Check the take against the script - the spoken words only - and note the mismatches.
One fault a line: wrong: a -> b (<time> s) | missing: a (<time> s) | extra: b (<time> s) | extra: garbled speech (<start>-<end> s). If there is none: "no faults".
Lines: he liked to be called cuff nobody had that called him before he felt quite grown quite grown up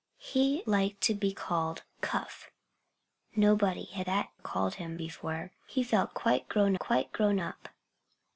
no faults